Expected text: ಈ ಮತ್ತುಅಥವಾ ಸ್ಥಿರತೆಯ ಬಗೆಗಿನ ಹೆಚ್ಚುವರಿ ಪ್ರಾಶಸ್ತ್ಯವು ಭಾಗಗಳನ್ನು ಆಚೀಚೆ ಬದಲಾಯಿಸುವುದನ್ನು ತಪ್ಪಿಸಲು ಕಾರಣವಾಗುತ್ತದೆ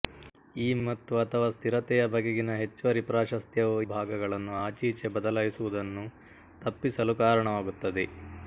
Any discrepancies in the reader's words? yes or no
no